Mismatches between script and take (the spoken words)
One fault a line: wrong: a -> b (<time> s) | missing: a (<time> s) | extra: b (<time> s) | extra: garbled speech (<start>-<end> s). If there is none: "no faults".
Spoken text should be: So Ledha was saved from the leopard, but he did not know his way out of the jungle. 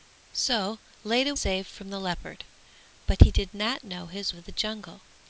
missing: was (1.4 s)
missing: way out (4.4 s)